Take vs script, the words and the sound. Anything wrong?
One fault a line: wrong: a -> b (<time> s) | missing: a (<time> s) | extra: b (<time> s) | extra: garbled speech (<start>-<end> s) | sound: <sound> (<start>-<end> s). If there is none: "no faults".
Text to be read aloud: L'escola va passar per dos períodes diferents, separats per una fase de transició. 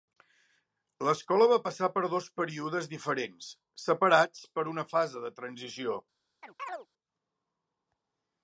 sound: chirp (6.4-6.9 s)